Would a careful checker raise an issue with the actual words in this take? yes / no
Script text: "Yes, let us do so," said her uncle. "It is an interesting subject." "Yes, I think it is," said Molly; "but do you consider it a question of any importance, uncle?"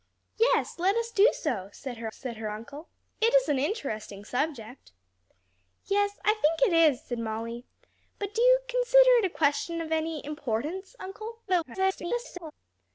yes